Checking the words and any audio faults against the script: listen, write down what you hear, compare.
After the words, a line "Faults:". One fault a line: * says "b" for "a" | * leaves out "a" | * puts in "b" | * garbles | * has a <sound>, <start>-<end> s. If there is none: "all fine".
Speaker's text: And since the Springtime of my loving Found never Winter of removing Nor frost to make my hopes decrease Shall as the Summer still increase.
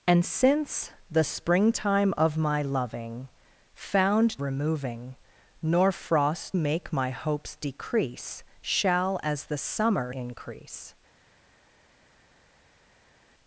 And since the Springtime of my loving Found removing Nor frost make my hopes decrease Shall as the Summer increase.
Faults:
* leaves out "never Winter of"
* leaves out "to"
* leaves out "still"